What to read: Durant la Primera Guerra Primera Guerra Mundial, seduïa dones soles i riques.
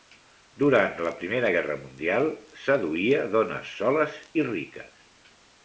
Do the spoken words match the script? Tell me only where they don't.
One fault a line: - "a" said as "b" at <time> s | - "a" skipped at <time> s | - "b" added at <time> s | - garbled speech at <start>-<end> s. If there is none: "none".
- "Primera Guerra" skipped at 1.7 s